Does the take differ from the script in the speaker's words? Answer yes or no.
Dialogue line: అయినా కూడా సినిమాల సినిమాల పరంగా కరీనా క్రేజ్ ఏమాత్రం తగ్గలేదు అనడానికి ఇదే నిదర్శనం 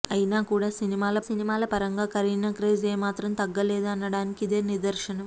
no